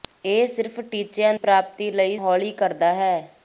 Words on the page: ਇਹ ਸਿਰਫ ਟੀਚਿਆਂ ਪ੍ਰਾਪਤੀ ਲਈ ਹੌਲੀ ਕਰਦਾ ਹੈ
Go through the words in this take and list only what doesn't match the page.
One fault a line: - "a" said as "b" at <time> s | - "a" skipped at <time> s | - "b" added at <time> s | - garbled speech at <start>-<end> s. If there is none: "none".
none